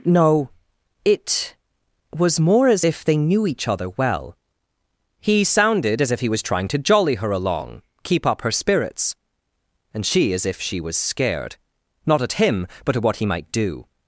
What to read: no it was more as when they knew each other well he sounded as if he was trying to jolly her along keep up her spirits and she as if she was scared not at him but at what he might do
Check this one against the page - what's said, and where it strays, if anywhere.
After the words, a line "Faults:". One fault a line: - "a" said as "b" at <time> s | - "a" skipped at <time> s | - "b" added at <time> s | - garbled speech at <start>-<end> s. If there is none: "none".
no it was more as if they knew each other well he sounded as if he was trying to jolly her along keep up her spirits and she as if she was scared not at him but at what he might do
Faults:
- "when" said as "if" at 2.8 s